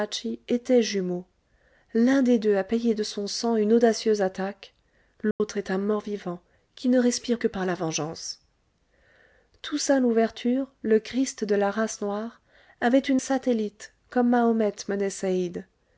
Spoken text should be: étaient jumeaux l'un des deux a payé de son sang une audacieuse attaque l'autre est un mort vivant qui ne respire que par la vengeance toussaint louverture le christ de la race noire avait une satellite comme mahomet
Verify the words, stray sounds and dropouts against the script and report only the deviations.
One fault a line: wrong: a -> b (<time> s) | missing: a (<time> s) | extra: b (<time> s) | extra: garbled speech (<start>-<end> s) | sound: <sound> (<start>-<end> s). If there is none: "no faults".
sound: dropout (5.3-5.4 s)